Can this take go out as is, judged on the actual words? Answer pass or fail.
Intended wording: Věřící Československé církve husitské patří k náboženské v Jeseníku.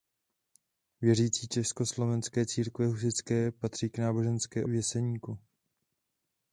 pass